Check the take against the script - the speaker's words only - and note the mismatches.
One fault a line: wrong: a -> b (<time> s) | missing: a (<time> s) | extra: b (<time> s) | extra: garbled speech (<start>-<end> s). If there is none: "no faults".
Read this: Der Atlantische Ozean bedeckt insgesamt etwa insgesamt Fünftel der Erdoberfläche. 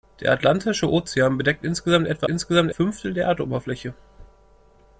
no faults